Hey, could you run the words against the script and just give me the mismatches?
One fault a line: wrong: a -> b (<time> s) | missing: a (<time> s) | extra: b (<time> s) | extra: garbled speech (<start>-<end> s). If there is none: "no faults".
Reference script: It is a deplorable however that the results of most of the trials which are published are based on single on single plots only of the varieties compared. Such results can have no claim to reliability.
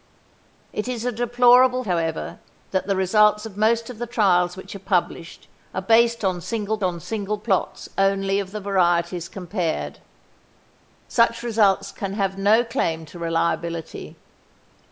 no faults